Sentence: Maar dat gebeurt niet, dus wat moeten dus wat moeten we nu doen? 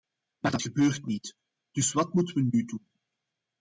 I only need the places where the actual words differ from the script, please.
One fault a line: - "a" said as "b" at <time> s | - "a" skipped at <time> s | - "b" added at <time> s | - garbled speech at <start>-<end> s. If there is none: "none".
- "dus wat moeten" skipped at 2.4 s